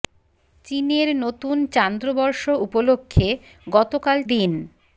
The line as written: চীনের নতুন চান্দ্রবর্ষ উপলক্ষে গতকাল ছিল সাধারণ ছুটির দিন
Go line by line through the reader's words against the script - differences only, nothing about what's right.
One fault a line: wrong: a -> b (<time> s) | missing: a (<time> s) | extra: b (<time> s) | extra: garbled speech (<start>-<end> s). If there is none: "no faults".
missing: ছিল সাধারণ ছুটির (4.2 s)